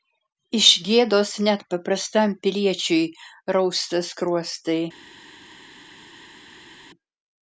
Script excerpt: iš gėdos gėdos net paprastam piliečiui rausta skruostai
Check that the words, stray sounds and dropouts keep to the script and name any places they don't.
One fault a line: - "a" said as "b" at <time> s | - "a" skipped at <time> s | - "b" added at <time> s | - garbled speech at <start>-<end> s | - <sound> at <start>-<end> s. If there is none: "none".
- "gėdos" skipped at 1.3 s